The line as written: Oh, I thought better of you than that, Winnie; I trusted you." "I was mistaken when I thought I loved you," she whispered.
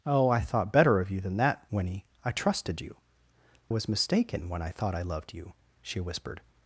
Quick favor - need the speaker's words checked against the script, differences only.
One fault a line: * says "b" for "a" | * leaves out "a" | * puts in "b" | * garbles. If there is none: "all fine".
* leaves out "I"